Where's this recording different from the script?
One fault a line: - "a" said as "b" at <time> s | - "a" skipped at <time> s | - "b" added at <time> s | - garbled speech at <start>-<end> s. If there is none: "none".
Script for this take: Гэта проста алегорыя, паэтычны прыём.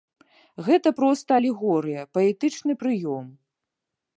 none